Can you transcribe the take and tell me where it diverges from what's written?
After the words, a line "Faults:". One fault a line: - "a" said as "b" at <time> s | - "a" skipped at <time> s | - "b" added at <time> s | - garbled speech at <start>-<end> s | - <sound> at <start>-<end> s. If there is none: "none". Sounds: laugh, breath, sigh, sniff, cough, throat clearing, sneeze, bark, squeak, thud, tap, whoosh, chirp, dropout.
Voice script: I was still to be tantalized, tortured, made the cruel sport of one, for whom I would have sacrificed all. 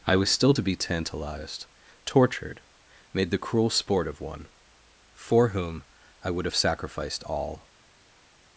I was still to be tantalized, tortured, made the cruel sport of one, for whom I would have sacrificed all.
Faults:
none